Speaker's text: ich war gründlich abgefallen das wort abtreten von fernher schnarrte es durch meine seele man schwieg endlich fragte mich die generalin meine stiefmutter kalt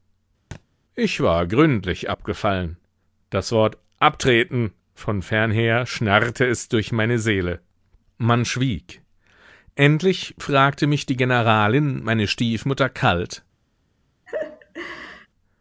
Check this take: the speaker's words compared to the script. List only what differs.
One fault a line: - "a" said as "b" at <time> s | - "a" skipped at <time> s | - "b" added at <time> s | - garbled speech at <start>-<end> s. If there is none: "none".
none